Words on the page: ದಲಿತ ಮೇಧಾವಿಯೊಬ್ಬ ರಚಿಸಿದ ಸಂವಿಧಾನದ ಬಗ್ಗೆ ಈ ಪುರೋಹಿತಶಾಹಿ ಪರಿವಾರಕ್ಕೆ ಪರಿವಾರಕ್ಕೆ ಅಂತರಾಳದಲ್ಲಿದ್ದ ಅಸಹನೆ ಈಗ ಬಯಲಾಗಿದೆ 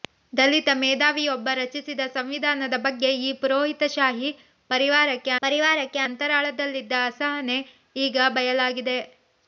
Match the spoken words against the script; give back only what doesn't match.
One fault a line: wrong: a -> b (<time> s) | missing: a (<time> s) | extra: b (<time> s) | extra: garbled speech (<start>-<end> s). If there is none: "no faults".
no faults